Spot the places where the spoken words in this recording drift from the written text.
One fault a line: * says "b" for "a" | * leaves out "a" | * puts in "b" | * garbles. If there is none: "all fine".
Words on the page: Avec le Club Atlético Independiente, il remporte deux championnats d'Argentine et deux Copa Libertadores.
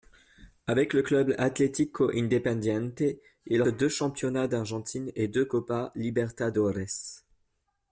* leaves out "remporte"